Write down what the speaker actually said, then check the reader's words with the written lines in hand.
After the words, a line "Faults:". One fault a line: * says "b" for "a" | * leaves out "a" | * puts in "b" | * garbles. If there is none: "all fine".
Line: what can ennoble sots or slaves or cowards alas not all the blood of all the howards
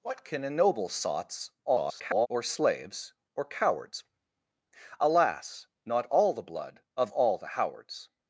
what can ennoble sots [garbled] or slaves or cowards alas not all the blood of all the howards
Faults:
* garbles